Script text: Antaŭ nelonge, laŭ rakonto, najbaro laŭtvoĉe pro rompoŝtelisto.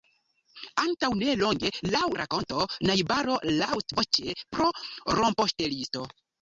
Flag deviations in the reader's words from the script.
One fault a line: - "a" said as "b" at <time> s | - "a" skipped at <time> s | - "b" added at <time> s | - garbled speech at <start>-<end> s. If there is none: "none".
none